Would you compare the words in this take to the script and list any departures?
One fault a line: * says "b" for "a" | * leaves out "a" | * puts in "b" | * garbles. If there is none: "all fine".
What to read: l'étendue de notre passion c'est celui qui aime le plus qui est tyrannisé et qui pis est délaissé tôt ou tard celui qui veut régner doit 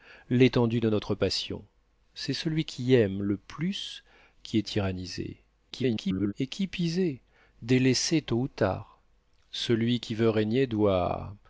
* garbles